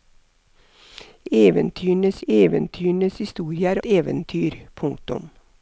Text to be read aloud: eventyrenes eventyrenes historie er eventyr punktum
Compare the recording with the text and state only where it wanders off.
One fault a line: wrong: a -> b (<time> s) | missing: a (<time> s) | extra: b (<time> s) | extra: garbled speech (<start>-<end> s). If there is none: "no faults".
no faults